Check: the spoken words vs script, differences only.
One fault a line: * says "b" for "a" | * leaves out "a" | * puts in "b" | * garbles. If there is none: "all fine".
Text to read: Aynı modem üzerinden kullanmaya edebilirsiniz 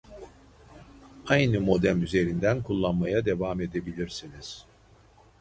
* puts in "devam"